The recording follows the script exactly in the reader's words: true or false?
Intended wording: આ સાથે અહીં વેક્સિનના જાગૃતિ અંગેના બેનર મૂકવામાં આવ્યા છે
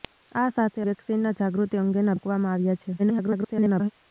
false